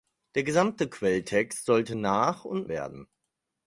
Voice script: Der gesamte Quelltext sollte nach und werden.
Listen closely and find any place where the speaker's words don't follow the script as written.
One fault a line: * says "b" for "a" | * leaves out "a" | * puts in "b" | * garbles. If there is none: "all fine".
all fine